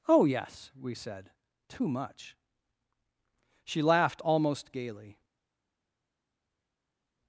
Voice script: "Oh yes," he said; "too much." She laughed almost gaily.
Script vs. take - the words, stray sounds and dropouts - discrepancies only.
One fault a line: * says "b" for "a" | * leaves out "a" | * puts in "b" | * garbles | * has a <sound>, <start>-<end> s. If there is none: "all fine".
* says "we" for "he"